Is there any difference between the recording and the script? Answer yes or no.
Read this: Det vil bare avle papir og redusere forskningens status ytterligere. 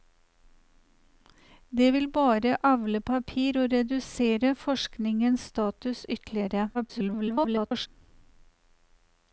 yes